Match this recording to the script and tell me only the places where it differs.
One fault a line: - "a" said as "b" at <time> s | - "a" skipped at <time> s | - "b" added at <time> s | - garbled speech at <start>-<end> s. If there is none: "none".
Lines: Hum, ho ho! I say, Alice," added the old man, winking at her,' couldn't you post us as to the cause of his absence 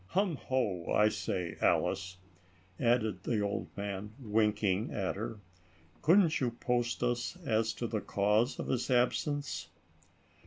- "ho" skipped at 0.9 s